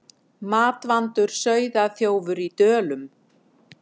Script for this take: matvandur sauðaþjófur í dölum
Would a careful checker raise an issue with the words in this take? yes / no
no